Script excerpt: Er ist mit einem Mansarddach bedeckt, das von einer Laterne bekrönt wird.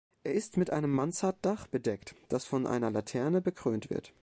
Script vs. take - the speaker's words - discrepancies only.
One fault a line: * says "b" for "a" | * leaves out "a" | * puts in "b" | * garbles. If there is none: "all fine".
all fine